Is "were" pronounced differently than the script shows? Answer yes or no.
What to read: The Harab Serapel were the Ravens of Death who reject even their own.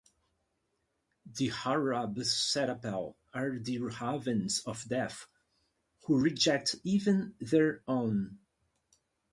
yes